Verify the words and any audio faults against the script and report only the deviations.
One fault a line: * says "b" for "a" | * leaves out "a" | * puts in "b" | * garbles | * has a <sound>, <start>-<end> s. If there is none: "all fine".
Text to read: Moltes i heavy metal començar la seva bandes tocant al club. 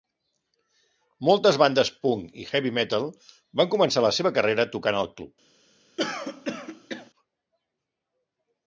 * puts in "bandes punk"
* puts in "van"
* says "carrera" for "bandes"
* has a throat clearing, 6.0-7.1 s